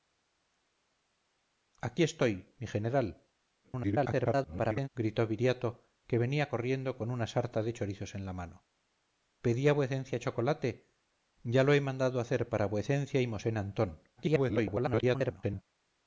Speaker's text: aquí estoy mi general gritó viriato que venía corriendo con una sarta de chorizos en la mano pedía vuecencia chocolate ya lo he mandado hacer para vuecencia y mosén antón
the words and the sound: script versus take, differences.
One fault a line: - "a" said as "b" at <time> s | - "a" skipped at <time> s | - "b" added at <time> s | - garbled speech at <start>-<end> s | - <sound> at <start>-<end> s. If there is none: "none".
- garbled speech at 3.6-4.9 s
- garbled speech at 14.2-15.6 s